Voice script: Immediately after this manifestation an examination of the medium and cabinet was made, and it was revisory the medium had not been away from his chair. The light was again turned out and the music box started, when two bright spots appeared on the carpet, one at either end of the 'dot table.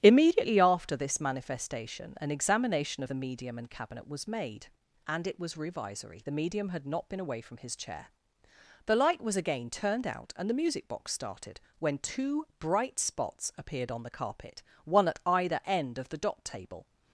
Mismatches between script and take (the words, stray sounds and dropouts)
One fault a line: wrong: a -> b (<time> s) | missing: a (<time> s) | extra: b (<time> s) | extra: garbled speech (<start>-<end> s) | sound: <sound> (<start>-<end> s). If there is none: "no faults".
no faults